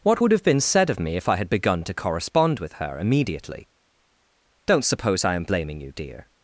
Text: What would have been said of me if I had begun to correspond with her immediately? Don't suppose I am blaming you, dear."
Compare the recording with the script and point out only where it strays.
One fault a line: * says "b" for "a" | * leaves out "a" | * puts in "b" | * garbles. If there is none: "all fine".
all fine